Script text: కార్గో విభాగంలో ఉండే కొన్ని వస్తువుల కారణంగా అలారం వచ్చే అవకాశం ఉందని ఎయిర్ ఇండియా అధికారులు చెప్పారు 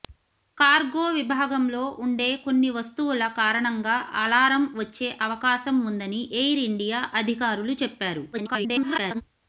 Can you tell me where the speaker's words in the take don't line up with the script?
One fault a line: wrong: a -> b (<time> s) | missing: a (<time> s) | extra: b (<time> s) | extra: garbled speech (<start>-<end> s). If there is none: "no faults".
extra: garbled speech (8.3-9.2 s)